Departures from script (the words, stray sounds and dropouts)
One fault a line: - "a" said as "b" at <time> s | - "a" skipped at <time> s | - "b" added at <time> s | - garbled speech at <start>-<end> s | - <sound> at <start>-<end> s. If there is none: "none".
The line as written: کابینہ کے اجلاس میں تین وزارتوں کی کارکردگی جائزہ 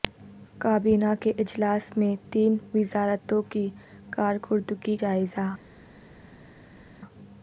none